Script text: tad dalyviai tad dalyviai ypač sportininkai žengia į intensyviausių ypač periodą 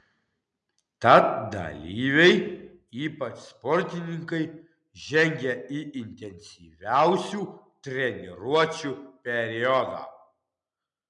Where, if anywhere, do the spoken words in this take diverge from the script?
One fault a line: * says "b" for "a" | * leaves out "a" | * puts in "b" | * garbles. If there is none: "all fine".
* leaves out "tad dalyviai"
* says "treniruočių" for "ypač"